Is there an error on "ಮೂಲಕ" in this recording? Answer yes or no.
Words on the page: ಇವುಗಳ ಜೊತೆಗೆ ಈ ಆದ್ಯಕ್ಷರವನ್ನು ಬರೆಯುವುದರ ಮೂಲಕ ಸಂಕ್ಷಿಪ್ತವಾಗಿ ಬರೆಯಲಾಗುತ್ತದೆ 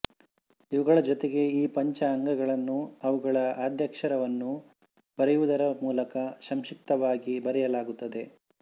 no